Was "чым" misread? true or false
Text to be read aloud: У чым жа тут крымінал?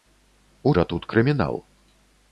true